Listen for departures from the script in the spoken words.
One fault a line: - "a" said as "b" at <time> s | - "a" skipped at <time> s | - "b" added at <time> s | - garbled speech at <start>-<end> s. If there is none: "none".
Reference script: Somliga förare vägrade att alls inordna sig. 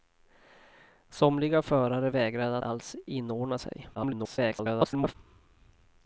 - "att" skipped at 2.6 s
- garbled speech at 3.9-5.1 s